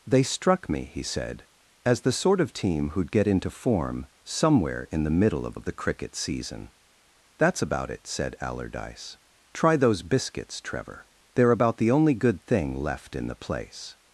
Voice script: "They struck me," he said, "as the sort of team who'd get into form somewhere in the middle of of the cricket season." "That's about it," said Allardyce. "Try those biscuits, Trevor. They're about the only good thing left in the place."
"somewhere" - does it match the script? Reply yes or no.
yes